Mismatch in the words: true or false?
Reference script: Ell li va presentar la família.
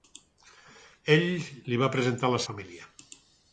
false